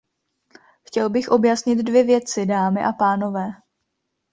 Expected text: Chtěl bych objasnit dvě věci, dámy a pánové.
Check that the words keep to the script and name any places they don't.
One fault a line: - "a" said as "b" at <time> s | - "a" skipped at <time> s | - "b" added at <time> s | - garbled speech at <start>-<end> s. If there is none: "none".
none